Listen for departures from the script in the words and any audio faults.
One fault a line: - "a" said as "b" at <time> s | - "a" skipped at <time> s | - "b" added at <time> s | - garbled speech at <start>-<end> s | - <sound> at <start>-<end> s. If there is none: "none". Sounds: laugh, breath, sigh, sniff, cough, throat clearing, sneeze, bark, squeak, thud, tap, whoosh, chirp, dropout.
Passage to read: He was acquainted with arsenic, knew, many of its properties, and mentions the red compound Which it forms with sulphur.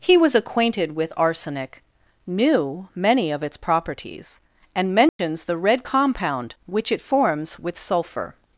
- dropout at 5.1-5.2 s